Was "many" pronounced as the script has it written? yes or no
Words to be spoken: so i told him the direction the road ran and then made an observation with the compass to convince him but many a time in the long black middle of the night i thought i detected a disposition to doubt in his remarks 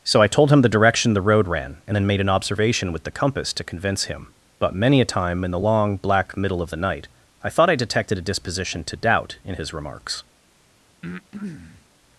yes